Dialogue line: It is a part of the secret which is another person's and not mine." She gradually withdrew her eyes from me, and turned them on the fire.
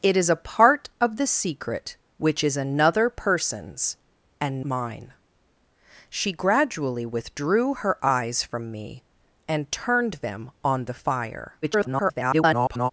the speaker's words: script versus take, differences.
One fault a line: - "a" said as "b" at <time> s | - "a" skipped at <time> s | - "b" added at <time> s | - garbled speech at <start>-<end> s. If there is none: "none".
- "not" skipped at 4.6 s
- garbled speech at 11.6-12.9 s